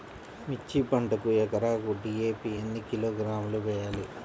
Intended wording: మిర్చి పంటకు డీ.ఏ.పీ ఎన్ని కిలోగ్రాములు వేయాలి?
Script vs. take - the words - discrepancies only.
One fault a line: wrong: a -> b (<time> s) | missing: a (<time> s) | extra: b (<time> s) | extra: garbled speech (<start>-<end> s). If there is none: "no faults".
extra: ఎకరాకు (1.4 s)